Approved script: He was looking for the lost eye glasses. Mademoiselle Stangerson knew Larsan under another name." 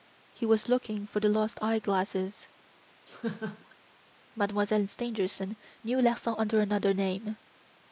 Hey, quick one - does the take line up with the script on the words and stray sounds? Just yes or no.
no